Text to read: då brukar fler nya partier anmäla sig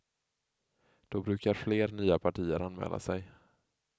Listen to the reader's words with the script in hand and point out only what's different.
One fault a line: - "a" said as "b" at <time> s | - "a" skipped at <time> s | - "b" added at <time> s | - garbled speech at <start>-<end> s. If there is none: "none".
none